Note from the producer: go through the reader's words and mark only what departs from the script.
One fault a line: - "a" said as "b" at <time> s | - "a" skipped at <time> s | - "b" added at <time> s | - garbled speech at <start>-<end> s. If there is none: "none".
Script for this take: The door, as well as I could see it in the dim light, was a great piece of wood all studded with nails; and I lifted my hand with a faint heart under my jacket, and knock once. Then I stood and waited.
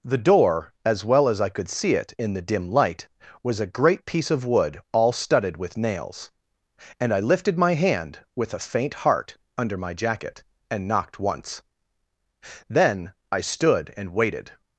- "knock" said as "knocked" at 10.9 s